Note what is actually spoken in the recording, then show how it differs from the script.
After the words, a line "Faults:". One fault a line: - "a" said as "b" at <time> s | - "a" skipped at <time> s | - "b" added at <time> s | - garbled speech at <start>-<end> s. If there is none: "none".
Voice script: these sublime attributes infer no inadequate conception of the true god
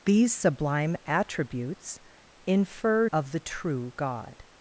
these sublime attributes infer of the true god
Faults:
- "no inadequate conception" skipped at 3.1 s